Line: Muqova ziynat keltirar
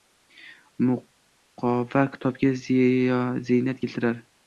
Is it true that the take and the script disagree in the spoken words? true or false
true